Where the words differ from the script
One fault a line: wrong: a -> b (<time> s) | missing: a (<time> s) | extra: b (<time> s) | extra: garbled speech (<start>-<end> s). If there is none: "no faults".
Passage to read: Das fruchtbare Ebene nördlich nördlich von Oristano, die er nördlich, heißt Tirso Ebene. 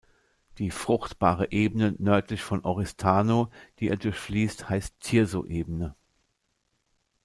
wrong: Das -> Die (0.6 s)
missing: nördlich (2.4 s)
wrong: nördlich -> durchfließt (4.0 s)